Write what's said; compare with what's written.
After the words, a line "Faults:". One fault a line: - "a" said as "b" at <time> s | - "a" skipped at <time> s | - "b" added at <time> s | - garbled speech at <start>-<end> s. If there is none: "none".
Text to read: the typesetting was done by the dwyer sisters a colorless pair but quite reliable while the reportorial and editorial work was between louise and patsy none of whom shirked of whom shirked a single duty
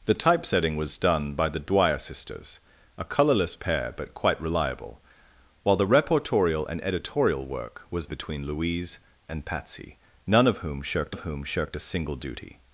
the typesetting was done by the dwyer sisters a colorless pair but quite reliable while the reportorial and editorial work was between louise and patsy none of whom shirked of whom shirked a single duty
Faults:
none